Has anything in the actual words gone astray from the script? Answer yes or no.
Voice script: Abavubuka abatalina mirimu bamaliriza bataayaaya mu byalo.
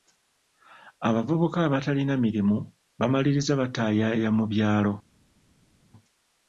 no